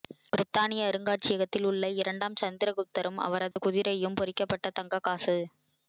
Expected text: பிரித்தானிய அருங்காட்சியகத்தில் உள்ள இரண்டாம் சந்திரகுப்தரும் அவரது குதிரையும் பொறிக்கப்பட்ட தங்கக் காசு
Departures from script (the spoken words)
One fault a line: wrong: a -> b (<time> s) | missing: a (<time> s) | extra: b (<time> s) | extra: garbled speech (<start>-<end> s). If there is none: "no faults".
no faults